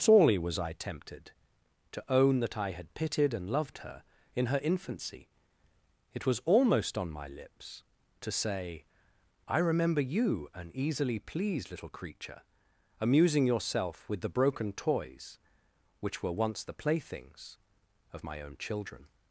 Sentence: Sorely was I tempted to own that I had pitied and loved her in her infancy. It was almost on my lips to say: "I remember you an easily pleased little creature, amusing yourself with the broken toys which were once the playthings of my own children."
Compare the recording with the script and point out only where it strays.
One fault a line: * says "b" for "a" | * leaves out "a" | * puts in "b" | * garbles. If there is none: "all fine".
all fine